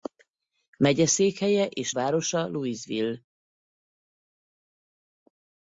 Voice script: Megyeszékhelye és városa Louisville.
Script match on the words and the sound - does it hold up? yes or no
yes